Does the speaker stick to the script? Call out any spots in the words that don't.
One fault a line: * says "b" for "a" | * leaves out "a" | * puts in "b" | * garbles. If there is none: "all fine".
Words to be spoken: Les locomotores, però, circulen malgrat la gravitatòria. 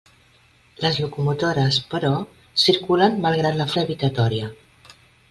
all fine